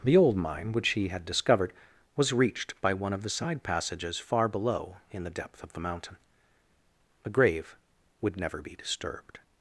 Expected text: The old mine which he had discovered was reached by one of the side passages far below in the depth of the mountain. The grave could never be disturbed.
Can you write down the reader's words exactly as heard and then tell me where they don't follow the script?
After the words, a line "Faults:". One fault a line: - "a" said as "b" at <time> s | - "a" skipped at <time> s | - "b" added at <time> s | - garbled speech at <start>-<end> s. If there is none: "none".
The old mine which he had discovered was reached by one of the side passages far below in the depth of the mountain. The grave would never be disturbed.
Faults:
- "could" said as "would" at 8.2 s